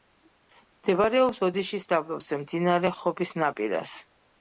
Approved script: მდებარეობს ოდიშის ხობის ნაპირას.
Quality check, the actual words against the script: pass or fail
fail